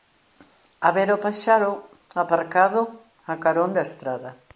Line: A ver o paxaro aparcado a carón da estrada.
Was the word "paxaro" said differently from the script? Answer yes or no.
no